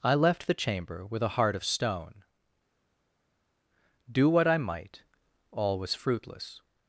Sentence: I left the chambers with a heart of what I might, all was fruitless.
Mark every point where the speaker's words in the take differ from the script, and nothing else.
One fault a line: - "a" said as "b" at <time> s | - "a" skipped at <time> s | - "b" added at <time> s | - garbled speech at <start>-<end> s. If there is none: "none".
- "chambers" said as "chamber" at 0.5 s
- "stone Do" added at 1.6 s